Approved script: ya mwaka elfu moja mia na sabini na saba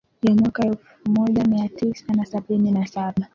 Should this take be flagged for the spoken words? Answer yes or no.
yes